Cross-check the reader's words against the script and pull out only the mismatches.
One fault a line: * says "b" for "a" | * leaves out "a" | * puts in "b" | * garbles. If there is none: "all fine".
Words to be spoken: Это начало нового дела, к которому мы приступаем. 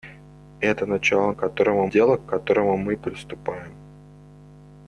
* says "которому" for "нового"